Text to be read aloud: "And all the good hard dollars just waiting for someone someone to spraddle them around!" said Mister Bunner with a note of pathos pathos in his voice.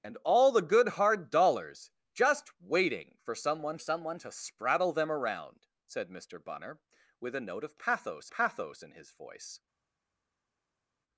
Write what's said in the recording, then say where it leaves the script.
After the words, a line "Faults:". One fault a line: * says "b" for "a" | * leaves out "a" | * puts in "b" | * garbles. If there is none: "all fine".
"And all the good hard dollars just waiting for someone someone to spraddle them around!" said Mister Bunner with a note of pathos pathos in his voice.
Faults:
all fine